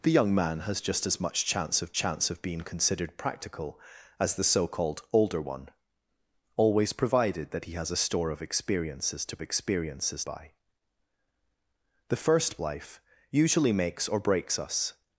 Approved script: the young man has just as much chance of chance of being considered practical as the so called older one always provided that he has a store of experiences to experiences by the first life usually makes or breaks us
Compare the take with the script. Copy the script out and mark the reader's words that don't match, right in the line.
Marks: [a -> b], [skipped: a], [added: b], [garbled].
the young man has just as much chance of chance of being considered practical as the so called older one always provided that he has a store of experiences to experiences by the first life usually makes or breaks us